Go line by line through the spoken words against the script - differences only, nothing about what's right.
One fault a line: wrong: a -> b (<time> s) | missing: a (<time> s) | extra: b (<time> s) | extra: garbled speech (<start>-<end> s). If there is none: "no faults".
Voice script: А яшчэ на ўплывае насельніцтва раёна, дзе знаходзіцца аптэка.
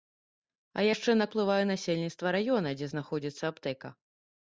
no faults